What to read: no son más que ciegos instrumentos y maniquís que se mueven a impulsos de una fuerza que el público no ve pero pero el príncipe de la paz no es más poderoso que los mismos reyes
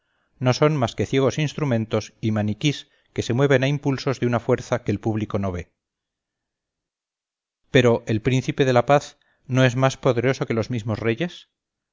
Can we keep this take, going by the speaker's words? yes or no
no